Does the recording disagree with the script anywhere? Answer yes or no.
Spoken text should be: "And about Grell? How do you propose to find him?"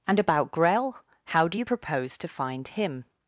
no